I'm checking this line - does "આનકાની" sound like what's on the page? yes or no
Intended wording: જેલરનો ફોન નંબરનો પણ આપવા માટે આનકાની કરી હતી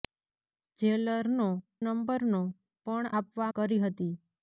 no